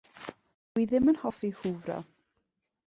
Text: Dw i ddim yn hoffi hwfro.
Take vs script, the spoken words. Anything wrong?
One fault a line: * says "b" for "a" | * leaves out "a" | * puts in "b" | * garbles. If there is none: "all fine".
all fine